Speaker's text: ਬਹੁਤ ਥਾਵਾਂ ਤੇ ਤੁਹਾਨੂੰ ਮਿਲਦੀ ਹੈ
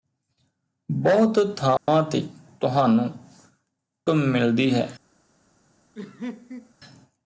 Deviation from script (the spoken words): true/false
false